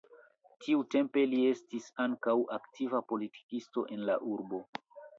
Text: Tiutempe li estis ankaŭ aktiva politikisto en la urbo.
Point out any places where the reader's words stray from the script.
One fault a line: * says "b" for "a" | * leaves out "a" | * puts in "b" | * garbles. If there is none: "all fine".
all fine